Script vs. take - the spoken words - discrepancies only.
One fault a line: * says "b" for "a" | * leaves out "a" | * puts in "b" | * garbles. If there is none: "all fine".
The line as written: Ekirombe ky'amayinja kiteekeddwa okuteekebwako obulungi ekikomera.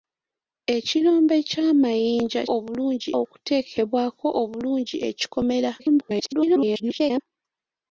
* says "obulungi" for "kiteekeddwa"
* garbles